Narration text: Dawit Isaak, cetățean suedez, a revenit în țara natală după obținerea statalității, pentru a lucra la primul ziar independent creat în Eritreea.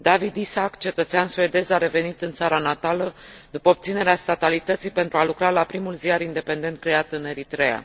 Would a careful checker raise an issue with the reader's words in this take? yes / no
no